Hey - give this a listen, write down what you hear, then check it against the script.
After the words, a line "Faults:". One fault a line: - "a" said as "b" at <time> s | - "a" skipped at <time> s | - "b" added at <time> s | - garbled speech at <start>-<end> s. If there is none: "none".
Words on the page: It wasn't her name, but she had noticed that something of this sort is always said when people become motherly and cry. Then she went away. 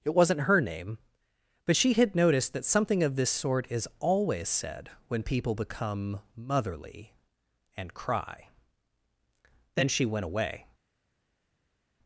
It wasn't her name, but she had noticed that something of this sort is always said when people become motherly and cry. Then she went away.
Faults:
none